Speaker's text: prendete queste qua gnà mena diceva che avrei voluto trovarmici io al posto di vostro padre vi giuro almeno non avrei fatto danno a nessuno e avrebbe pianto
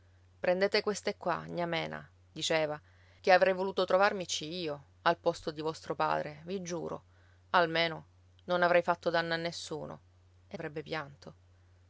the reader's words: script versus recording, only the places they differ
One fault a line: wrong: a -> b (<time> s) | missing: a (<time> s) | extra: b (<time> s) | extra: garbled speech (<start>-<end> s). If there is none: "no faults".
no faults